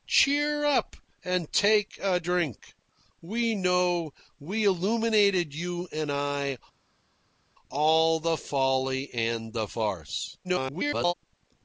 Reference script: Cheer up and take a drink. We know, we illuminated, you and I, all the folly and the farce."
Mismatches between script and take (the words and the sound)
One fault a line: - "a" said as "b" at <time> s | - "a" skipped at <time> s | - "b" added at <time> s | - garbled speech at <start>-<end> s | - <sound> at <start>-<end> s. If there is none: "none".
- garbled speech at 10.4-11.1 s